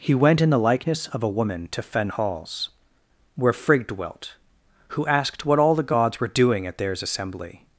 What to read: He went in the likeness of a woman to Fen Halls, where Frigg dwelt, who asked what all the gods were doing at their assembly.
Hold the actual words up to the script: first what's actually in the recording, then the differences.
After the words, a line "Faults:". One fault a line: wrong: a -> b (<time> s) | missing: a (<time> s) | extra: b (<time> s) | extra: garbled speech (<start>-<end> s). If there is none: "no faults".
He went in the likeness of a woman to Fen Halls, where Frigg dwelt, who asked what all the gods were doing at theirs assembly.
Faults:
wrong: their -> theirs (6.8 s)